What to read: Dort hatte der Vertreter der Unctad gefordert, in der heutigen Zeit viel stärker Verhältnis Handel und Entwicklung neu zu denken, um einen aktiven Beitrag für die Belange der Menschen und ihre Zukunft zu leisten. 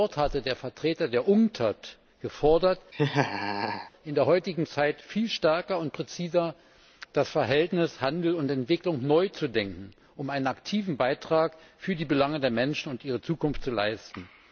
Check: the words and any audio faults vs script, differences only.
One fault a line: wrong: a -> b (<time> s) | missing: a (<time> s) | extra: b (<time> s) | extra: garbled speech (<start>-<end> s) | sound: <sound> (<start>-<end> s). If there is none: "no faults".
sound: laugh (2.9-3.9 s)
extra: und präziser das (5.8 s)